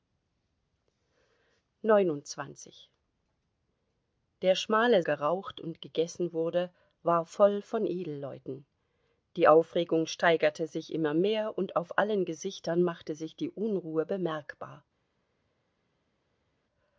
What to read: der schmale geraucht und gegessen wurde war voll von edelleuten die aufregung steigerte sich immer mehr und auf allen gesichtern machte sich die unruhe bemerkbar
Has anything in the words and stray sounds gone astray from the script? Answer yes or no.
no